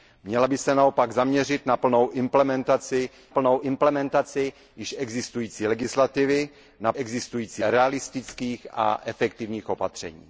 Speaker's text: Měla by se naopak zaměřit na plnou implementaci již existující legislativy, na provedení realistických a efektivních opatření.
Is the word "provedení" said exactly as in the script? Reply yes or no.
no